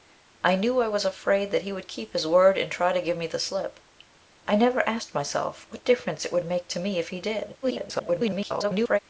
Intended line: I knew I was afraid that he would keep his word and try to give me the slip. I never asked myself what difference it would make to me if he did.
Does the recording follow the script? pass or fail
fail